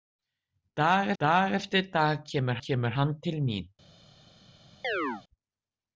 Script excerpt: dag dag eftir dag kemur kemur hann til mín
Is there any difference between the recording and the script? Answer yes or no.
no